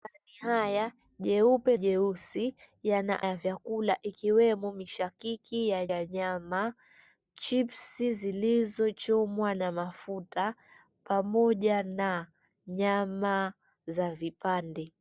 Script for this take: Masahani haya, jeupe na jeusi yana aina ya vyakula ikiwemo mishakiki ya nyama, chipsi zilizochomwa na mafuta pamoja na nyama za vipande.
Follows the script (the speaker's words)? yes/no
no